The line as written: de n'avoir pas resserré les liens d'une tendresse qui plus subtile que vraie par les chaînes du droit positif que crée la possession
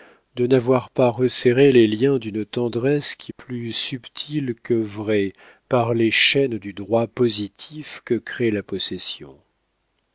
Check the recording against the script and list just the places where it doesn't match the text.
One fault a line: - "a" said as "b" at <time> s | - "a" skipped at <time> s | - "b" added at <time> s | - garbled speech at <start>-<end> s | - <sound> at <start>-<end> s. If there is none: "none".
none